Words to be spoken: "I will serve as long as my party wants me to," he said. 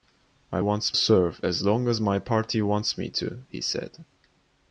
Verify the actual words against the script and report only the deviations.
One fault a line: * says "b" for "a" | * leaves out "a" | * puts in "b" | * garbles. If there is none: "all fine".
* says "wants" for "will"